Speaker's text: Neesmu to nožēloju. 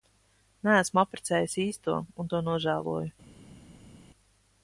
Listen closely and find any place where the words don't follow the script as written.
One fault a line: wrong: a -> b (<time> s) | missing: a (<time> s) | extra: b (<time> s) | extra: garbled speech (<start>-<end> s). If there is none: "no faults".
extra: apprecējis īsto un (1.0 s)